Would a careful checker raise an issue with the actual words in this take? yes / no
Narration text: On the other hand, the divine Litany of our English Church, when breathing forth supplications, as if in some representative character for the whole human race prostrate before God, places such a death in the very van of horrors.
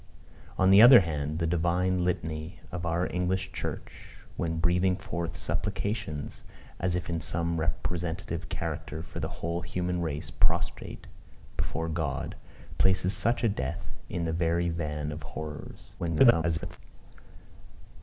yes